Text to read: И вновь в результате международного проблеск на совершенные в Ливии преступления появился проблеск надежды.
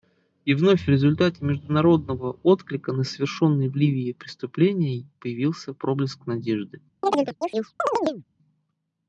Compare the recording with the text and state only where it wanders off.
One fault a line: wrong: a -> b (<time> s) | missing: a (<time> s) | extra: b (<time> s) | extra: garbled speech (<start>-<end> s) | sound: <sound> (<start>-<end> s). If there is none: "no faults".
wrong: проблеск -> отклика (2.4 s)
sound: chirp (7.0-8.2 s)